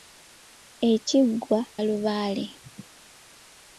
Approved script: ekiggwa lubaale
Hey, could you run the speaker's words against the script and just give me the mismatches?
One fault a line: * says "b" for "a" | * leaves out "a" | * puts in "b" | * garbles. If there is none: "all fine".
all fine